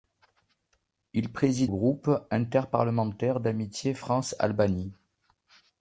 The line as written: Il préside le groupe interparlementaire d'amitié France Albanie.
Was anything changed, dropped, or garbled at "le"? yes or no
yes